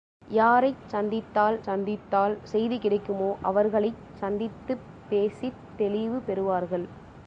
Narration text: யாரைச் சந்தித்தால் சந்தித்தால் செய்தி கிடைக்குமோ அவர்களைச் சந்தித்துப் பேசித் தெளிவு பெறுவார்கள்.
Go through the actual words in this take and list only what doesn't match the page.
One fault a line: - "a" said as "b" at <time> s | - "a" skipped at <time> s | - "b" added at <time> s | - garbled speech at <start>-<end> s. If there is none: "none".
none